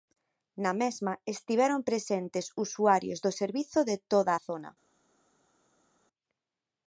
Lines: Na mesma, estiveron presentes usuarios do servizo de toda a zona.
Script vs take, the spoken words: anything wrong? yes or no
no